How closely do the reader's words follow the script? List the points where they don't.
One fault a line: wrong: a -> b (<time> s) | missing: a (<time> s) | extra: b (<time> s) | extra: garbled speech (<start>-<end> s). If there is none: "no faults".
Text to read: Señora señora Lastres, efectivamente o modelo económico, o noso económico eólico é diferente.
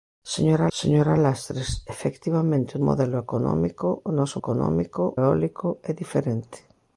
no faults